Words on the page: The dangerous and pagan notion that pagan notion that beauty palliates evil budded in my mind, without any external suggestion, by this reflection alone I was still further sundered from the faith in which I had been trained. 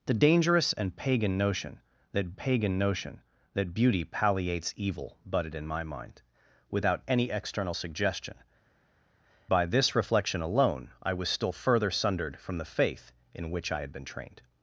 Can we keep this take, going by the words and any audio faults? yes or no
yes